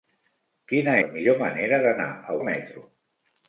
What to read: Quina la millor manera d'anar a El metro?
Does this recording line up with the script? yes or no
yes